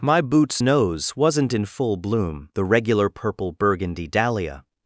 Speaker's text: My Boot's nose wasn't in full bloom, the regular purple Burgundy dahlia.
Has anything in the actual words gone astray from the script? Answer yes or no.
no